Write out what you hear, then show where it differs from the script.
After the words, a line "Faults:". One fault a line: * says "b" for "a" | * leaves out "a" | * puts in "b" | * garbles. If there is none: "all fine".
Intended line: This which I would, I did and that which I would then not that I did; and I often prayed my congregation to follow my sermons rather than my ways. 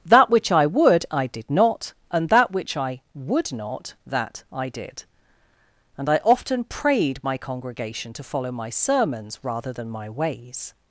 That which I would, I did not, and that which I would not that I did; and I often prayed my congregation to follow my sermons rather than my ways.
Faults:
* says "That" for "This"
* puts in "not"
* leaves out "then"